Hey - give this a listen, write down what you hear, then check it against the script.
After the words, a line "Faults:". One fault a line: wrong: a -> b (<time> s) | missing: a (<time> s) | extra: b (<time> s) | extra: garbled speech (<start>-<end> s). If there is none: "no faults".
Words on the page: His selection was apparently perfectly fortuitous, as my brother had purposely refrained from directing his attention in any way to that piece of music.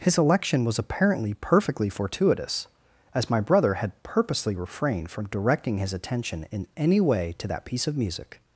His election was apparently perfectly fortuitous, as my brother had purposely refrained from directing his attention in any way to that piece of music.
Faults:
wrong: selection -> election (0.2 s)